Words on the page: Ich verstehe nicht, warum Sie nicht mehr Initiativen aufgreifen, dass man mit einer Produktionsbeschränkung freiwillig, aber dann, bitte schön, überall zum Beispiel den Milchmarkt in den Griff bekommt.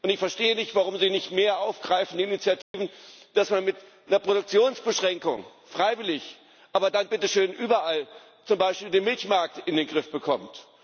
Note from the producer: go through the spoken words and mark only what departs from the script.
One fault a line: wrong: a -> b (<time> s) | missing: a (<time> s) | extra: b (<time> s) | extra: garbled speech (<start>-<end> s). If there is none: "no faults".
no faults